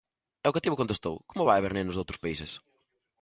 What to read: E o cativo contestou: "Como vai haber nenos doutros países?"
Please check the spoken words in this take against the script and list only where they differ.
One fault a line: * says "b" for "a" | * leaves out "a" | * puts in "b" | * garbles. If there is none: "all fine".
all fine